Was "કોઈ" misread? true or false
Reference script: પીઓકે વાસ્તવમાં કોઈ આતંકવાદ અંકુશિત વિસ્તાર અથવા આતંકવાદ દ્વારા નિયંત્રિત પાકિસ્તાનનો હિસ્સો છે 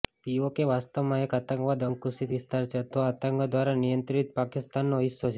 true